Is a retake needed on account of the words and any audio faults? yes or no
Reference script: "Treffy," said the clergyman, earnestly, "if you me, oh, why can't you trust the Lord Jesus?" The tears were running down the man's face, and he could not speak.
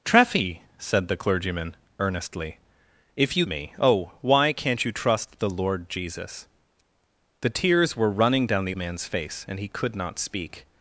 no